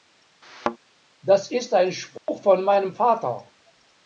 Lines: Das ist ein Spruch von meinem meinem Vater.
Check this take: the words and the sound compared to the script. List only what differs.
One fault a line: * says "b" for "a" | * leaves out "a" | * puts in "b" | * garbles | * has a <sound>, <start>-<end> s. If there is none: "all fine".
* has a thud, 0.4-0.8 s
* has a dropout, 2.2-2.3 s
* leaves out "meinem"